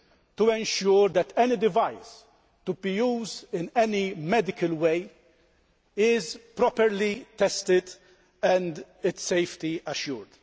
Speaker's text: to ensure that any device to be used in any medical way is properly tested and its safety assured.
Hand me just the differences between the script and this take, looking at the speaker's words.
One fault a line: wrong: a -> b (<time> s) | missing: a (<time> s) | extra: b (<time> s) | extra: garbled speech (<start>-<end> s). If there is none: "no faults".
no faults